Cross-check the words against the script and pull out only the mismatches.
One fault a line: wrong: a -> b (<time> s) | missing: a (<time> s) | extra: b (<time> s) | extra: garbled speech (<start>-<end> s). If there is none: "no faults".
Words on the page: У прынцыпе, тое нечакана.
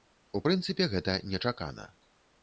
wrong: тое -> гэта (0.9 s)